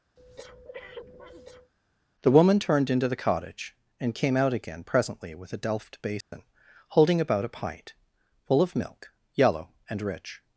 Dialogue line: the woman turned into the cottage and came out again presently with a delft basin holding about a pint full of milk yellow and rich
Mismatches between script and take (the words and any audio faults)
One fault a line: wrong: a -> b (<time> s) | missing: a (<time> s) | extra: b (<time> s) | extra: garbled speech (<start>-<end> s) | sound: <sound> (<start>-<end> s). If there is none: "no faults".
sound: breath (0.2-1.7 s)
sound: dropout (6.2-6.3 s)